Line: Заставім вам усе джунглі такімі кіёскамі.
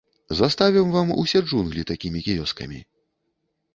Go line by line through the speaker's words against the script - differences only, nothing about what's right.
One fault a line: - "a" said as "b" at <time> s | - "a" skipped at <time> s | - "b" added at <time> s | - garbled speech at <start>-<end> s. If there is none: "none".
none